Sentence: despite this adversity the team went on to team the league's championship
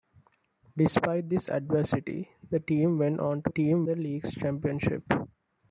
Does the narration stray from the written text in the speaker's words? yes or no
no